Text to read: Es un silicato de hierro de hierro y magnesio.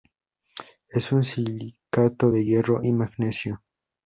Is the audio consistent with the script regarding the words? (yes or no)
no